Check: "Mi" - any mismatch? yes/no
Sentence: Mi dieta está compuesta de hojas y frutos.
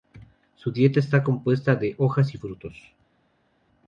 yes